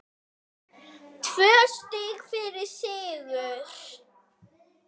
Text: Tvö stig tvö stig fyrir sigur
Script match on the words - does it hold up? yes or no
no